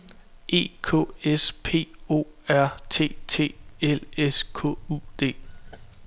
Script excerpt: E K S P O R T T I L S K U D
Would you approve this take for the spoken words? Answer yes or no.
no